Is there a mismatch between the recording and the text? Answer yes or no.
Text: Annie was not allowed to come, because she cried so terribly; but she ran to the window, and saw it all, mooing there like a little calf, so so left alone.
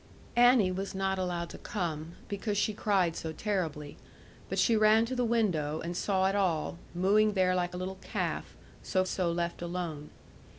no